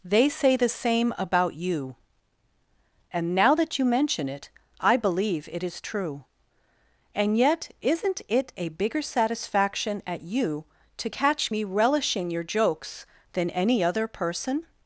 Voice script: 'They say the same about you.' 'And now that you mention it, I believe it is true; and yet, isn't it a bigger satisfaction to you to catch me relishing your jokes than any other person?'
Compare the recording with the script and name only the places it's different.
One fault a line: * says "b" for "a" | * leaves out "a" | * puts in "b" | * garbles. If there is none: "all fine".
* says "at" for "to"